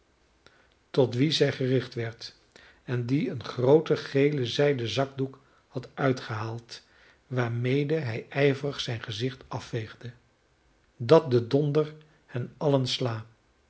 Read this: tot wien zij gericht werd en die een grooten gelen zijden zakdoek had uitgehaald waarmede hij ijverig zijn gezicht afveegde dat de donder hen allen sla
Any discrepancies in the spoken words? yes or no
no